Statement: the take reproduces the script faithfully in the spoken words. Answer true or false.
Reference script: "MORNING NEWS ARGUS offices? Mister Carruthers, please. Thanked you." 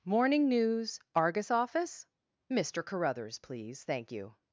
false